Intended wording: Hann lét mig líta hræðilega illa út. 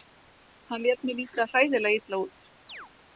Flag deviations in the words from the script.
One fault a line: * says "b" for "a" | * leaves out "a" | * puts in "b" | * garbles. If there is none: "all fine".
all fine